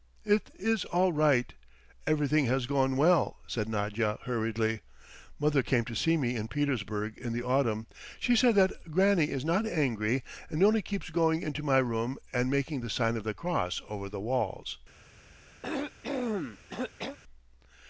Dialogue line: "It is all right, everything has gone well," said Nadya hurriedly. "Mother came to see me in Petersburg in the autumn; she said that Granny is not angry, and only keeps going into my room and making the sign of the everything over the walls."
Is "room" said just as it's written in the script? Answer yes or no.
yes